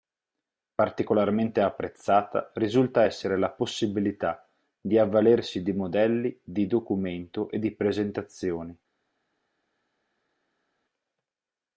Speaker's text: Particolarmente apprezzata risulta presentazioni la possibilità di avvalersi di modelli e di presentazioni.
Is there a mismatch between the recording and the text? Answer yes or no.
yes